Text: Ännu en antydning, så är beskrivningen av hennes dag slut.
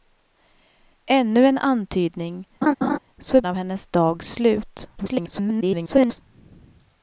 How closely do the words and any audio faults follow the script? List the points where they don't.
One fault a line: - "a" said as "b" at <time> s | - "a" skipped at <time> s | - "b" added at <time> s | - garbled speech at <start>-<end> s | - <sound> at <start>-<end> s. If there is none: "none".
- laugh at 2.6-3.0 s
- "beskrivningen" skipped at 3.4 s
- garbled speech at 5.0-6.2 s